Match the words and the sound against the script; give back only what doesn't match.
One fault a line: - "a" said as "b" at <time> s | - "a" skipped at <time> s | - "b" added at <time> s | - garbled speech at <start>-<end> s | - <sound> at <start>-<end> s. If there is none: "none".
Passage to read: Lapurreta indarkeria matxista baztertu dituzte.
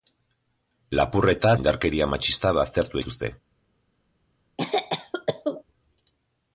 - cough at 4.6-5.6 s